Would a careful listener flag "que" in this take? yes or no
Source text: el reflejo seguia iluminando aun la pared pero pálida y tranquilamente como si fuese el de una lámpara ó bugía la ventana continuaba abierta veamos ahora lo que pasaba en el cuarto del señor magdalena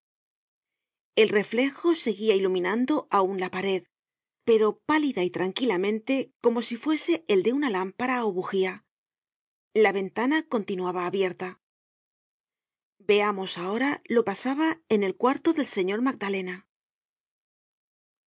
yes